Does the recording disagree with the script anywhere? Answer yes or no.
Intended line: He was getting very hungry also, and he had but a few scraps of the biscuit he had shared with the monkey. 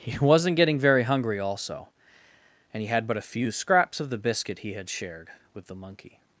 yes